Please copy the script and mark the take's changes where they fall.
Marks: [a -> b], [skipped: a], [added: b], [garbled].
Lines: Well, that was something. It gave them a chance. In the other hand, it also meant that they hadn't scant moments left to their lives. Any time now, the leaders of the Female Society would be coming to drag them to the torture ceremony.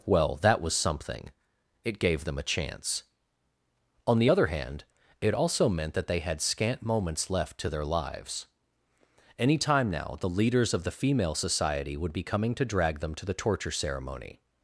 Well, that was something. It gave them a chance. [In -> On] the other hand, it also meant that they [hadn't -> had] scant moments left to their lives. Any time now, the leaders of the Female Society would be coming to drag them to the torture ceremony.